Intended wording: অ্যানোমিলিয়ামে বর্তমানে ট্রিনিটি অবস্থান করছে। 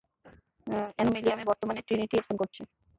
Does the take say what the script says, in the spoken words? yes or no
yes